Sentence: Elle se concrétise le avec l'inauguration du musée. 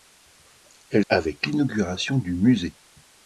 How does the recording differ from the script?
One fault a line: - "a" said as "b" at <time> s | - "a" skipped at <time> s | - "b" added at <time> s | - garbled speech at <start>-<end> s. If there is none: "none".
- "se concrétise le" skipped at 1.1 s